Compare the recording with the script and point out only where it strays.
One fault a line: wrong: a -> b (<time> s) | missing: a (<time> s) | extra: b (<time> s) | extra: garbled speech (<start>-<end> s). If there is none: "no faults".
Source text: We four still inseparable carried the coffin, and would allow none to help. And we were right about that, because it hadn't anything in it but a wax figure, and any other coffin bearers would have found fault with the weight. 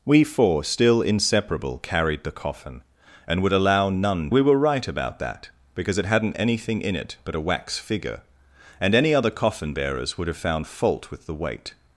missing: to help And (4.3 s)